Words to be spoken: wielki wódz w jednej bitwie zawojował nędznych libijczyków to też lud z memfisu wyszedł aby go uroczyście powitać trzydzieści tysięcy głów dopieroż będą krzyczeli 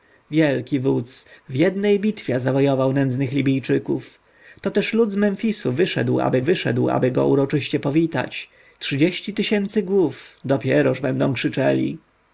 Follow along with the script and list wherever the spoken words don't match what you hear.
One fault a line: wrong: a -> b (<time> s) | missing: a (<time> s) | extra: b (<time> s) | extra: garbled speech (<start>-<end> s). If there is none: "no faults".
extra: wyszedł aby (6.4 s)